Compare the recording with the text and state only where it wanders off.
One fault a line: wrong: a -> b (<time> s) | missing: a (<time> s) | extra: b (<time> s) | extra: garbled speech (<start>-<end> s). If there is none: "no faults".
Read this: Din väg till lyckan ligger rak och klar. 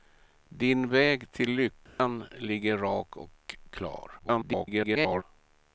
extra: garbled speech (4.2-5.2 s)